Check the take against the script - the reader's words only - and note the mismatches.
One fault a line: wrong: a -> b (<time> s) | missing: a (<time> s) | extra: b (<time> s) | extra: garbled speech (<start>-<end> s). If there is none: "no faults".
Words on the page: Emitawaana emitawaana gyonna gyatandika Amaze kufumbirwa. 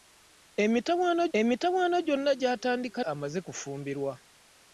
no faults